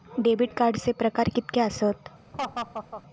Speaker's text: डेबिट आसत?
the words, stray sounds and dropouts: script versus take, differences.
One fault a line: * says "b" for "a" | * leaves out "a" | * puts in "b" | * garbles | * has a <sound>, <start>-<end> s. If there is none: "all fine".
* puts in "कार्डचे प्रकार कीतके"
* has a laugh, 2.3-3.0 s